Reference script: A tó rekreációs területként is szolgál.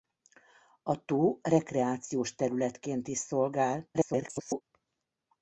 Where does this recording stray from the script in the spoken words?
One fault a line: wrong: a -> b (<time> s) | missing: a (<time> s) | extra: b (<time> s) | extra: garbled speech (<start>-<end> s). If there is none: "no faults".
extra: garbled speech (3.9-4.6 s)